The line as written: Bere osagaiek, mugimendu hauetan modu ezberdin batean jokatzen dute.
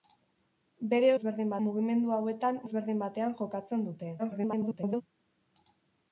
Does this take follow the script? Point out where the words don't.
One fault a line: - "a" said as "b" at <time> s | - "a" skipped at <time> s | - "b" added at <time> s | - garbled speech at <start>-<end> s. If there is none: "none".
- "osagaiek" said as "ezberdin" at 1.2 s
- "modu" skipped at 2.6 s
- garbled speech at 4.2-5.0 s